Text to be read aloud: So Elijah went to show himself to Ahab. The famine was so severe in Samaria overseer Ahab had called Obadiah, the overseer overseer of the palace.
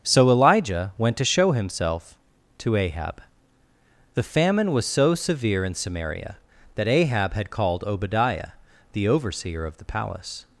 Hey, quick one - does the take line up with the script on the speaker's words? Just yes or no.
no